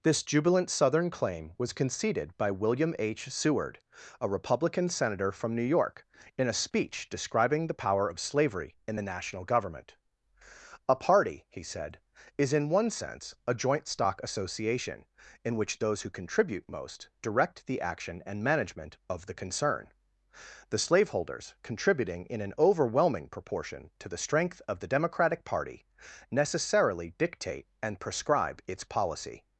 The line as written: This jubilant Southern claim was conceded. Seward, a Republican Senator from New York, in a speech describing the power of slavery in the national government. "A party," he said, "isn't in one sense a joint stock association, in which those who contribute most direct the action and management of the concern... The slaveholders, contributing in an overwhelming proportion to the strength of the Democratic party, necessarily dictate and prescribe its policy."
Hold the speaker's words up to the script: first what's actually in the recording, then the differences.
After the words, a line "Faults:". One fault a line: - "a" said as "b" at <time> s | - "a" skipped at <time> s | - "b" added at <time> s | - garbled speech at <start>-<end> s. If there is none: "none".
This jubilant Southern claim was conceded by William H. Seward, a Republican Senator from New York, in a speech describing the power of slavery in the national government. "A party," he said, "is in one sense a joint stock association, in which those who contribute most direct the action and management of the concern... The slaveholders, contributing in an overwhelming proportion to the strength of the Democratic party, necessarily dictate and prescribe its policy."
Faults:
- "by William H" added at 2.4 s
- "isn't" said as "is" at 12.4 s